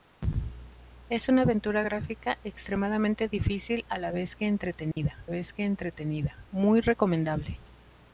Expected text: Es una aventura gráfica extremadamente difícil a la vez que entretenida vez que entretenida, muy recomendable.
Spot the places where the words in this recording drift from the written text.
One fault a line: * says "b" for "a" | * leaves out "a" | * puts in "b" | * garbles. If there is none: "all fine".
all fine